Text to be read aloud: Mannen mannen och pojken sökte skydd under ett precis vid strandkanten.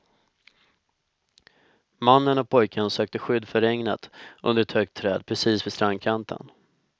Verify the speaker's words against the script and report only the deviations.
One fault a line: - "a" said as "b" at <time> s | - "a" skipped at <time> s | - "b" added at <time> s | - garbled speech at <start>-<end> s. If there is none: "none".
- "mannen" skipped at 2.4 s
- "för regnet" added at 3.5 s
- "högt träd" added at 4.7 s